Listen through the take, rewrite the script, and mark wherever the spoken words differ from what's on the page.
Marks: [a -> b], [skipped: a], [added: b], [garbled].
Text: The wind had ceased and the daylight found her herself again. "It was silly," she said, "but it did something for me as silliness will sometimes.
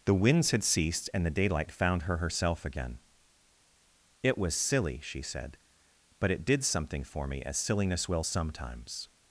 The [wind -> winds] had ceased and the daylight found her herself again. "It was silly," she said, "but it did something for me as silliness will sometimes.